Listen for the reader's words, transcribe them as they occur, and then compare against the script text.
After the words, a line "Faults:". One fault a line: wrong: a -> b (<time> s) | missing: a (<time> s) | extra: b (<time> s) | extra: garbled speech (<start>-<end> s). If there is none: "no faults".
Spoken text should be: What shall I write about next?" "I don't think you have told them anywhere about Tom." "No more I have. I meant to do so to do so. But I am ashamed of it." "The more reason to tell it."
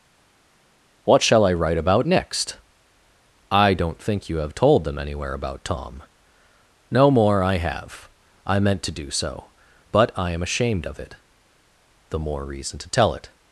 What shall I write about next?" "I don't think you have told them anywhere about Tom." "No more I have. I meant to do so. But I am ashamed of it." "The more reason to tell it."
Faults:
missing: to do so (9.5 s)